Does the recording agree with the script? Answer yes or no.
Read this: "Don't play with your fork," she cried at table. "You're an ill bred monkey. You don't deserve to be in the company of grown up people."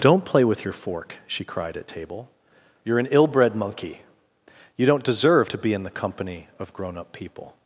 yes